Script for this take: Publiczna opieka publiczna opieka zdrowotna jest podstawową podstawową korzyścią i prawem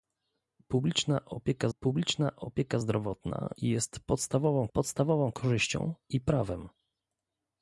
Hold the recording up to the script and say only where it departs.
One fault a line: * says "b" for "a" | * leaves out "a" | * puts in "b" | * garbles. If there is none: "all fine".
all fine